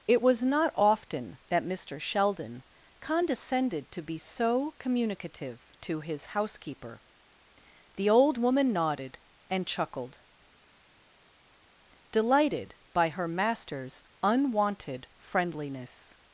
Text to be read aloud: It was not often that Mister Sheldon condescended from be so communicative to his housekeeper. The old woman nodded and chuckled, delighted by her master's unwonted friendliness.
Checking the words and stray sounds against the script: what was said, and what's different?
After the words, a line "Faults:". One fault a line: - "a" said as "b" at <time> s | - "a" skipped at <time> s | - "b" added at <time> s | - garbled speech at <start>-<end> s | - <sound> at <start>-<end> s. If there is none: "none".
It was not often that Mister Sheldon condescended to be so communicative to his housekeeper. The old woman nodded and chuckled, delighted by her master's unwonted friendliness.
Faults:
- "from" said as "to" at 3.9 s